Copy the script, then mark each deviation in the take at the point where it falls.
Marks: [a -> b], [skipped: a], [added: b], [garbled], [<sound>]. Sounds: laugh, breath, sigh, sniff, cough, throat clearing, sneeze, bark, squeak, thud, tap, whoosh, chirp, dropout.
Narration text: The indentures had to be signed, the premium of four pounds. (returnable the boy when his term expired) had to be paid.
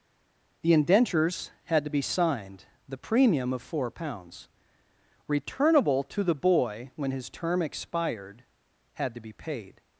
The indentures had to be signed, the premium of four pounds. (returnable [added: to] the boy when his term expired) had to be paid.